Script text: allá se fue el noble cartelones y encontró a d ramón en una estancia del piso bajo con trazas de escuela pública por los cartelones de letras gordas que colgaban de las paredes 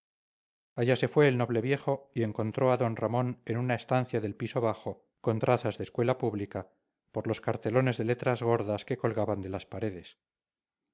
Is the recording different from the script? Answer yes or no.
yes